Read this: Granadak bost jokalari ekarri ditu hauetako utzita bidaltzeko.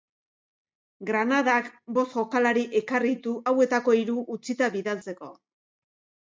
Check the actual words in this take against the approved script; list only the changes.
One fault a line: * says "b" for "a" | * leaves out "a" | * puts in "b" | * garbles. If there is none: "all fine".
* puts in "hiru"